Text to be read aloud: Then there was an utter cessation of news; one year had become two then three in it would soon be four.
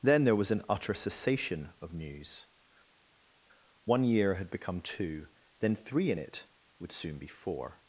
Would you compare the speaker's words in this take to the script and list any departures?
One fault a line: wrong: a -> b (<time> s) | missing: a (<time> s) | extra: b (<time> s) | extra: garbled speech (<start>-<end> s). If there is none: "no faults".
no faults